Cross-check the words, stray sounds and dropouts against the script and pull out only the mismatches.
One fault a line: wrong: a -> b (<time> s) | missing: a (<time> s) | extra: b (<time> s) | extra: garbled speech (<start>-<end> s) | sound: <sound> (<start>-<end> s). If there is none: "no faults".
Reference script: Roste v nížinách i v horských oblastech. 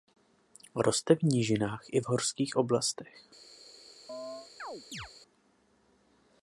sound: chirp (4.1-5.1 s)